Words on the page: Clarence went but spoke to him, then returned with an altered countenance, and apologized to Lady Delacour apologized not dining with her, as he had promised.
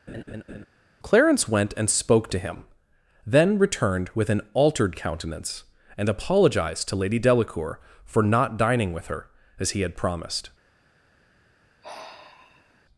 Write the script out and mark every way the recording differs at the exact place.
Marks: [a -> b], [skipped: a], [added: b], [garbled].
Clarence went [but -> and] spoke to him, then returned with an altered countenance, and apologized to Lady Delacour [apologized -> for] not dining with her, as he had promised.